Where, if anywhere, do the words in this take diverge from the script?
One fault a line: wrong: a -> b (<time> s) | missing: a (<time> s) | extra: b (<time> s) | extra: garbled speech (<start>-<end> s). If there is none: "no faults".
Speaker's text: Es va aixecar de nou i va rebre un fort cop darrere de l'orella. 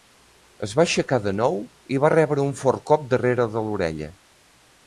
no faults